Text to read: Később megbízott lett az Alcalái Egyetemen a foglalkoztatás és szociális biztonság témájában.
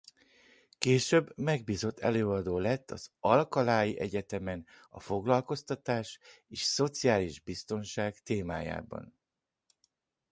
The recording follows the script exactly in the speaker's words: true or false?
false